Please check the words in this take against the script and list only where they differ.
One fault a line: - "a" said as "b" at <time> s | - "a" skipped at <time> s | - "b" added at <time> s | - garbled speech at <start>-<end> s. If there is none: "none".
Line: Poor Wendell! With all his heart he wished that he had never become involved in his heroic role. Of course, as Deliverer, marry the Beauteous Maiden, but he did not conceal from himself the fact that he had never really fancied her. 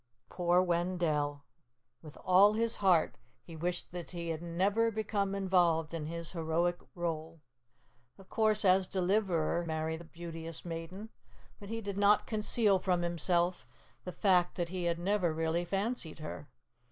none